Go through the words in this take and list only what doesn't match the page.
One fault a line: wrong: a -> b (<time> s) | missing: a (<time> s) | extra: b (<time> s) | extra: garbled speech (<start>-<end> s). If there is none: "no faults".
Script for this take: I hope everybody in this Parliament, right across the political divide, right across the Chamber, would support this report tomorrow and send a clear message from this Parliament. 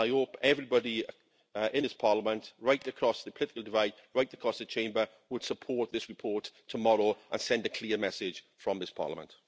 no faults